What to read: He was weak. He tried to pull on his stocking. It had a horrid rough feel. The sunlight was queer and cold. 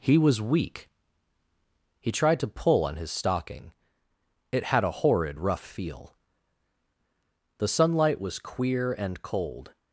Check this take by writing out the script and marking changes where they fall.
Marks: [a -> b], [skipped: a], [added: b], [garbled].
He was weak. He tried to pull on his stocking. It had a horrid rough feel. The sunlight was queer and cold.